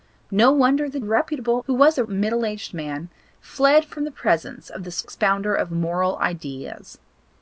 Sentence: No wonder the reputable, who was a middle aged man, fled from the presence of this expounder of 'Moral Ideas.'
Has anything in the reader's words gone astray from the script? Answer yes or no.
no